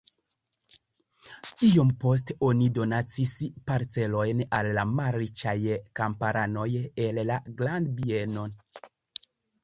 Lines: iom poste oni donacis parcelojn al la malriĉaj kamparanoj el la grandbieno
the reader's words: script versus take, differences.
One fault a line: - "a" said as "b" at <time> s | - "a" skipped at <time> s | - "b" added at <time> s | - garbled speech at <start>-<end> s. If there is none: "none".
none